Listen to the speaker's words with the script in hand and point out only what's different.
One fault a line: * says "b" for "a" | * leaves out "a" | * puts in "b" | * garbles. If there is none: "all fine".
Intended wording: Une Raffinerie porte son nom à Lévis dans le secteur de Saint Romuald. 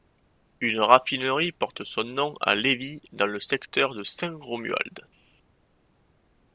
all fine